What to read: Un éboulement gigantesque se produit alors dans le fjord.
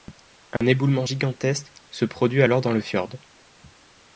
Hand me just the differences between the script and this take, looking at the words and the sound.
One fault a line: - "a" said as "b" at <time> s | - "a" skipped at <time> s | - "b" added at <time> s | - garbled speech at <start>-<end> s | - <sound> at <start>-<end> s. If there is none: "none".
- dropout at 0.6-0.6 s